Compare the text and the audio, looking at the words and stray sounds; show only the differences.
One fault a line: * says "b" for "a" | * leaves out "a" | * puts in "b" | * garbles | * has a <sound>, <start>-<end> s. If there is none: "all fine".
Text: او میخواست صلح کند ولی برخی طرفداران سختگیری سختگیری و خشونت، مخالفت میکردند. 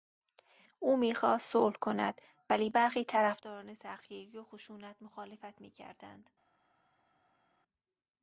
* leaves out "سختگیری"